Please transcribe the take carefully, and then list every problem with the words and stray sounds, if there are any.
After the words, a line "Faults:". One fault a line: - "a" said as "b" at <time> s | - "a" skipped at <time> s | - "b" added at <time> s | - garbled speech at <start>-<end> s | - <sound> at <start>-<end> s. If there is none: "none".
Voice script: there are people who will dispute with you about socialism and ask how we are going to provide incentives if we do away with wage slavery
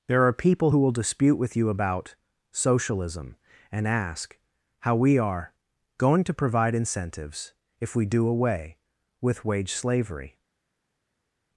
there are people who will dispute with you about socialism and ask how we are going to provide incentives if we do away with wage slavery
Faults:
none